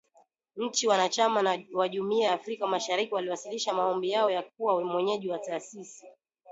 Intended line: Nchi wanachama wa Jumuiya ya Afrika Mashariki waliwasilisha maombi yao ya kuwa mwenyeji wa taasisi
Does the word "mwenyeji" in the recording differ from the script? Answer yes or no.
no